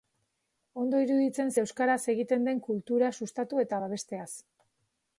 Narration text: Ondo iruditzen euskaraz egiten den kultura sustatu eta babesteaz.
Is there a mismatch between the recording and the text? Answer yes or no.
no